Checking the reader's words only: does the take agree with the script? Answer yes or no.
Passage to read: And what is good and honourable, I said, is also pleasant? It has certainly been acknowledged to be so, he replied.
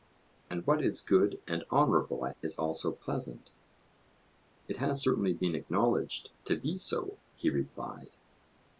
no